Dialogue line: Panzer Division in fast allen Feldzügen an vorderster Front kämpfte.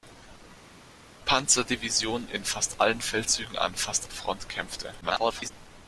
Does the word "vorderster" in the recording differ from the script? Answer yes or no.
yes